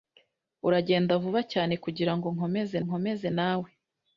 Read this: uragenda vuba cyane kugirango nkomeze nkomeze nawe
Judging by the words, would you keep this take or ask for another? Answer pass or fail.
pass